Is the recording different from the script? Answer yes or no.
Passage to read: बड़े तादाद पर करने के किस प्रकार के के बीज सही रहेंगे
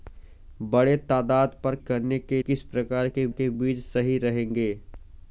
no